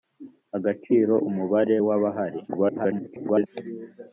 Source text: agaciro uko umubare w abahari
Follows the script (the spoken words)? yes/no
no